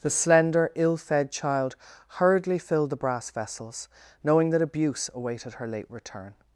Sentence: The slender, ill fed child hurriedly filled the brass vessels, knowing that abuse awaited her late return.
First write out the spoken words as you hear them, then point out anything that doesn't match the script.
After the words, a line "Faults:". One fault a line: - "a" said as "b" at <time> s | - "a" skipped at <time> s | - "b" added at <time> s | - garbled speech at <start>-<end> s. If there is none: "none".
The slender, ill fed child hurriedly filled the brass vessels, knowing that abuse awaited her late return.
Faults:
none